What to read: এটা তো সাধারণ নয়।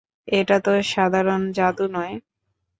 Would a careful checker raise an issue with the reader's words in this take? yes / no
yes